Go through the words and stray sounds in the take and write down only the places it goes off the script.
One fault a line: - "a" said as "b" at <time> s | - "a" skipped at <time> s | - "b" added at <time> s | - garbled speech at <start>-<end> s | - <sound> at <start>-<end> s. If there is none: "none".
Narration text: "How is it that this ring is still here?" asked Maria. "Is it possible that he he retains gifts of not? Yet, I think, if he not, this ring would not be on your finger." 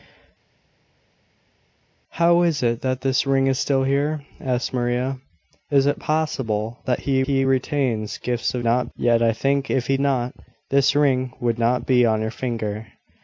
none